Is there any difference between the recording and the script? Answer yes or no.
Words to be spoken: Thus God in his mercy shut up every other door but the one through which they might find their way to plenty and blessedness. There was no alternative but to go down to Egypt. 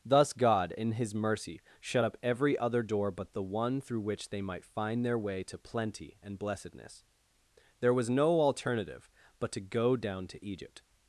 no